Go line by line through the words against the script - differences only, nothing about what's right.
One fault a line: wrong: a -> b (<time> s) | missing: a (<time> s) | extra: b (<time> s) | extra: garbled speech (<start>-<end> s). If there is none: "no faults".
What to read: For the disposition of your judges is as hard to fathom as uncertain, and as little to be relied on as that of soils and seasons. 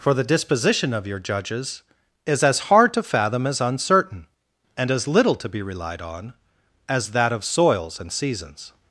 no faults